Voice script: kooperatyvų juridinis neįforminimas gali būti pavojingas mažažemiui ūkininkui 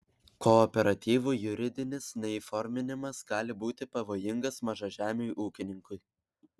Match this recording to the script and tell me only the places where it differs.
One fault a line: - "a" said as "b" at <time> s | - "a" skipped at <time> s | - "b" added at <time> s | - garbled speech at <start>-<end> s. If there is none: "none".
none